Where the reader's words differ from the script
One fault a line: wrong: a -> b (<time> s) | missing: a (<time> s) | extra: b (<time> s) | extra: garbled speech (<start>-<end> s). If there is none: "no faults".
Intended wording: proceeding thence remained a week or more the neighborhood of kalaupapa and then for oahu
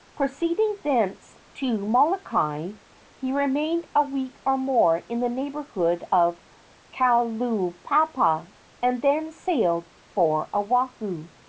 extra: to molokai he (1.6 s)
extra: in (5.1 s)
extra: sailed (9.3 s)